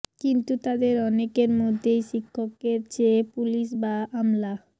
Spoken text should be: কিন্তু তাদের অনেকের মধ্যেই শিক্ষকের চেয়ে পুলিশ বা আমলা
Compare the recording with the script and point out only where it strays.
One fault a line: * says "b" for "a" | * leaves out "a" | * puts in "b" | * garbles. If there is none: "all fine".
all fine